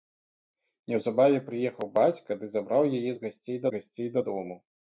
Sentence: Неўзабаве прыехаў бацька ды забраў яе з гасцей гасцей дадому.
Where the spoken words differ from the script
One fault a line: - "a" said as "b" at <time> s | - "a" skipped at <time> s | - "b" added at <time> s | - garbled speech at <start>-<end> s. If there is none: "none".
none